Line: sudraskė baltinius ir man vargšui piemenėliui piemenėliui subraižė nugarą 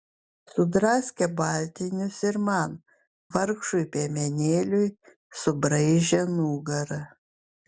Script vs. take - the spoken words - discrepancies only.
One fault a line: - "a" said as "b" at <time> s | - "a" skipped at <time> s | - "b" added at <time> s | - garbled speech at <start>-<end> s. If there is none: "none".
- "piemenėliui" skipped at 4.9 s